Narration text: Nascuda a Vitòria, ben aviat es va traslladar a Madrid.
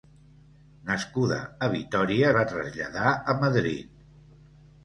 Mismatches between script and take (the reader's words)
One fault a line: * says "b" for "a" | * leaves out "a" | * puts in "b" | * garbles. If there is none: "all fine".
* leaves out "ben aviat es"